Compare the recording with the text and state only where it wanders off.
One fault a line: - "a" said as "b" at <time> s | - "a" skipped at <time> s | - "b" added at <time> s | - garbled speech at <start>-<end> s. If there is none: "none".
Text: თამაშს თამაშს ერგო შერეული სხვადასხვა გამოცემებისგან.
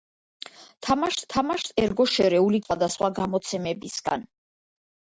none